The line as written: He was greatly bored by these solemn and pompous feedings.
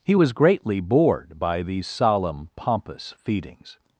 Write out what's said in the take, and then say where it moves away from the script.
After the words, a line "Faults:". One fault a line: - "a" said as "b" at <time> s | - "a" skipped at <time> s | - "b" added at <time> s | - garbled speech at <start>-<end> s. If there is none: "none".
He was greatly bored by these solemn pompous feedings.
Faults:
- "and" skipped at 2.5 s